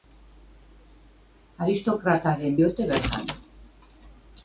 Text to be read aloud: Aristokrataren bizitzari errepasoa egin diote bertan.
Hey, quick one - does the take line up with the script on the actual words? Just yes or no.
no